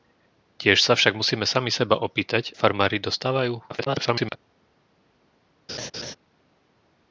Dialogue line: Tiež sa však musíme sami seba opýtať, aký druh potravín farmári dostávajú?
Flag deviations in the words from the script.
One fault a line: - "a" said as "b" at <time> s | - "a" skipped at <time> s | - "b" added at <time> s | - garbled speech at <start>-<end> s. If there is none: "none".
- "aký druh potravín" skipped at 2.6 s
- garbled speech at 3.7-4.4 s